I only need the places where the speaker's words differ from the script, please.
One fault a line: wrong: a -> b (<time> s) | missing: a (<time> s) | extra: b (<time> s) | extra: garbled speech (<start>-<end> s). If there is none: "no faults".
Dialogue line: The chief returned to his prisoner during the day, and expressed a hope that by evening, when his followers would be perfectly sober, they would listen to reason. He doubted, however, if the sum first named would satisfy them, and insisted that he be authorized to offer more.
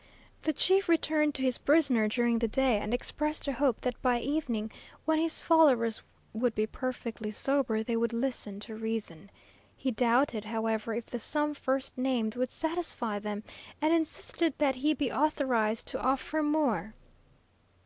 no faults